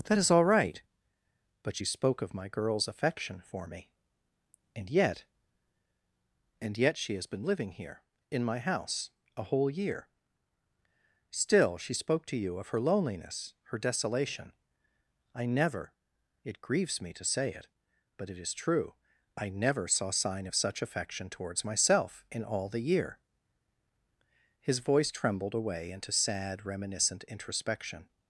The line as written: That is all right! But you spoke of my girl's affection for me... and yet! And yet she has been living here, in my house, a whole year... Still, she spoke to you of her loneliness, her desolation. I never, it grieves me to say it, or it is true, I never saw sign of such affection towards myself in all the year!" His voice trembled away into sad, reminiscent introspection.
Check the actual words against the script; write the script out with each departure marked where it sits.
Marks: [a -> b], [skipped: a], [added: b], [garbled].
That is all right! But you spoke of my girl's affection for me... and yet! And yet she has been living here, in my house, a whole year... Still, she spoke to you of her loneliness, her desolation. I never, it grieves me to say it, [or -> but] it is true, I never saw sign of such affection towards myself in all the year!" His voice trembled away into sad, reminiscent introspection.